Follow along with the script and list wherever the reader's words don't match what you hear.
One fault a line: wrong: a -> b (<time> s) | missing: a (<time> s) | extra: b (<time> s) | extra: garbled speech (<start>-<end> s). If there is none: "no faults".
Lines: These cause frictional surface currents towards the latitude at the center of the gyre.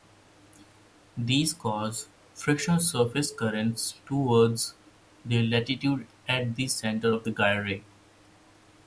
no faults